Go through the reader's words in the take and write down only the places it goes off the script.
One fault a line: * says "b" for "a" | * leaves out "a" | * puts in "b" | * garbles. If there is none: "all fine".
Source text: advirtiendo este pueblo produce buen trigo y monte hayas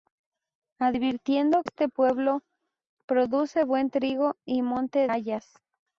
all fine